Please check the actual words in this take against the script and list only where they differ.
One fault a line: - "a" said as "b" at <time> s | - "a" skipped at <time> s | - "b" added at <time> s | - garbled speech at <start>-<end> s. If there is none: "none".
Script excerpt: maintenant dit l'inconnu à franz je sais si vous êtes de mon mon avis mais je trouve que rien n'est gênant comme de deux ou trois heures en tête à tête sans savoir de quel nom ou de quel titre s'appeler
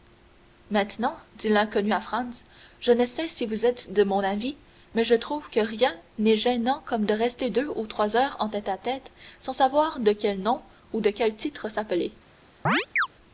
- "ne" added at 2.9 s
- "mon" skipped at 4.2 s
- "rester" added at 7.1 s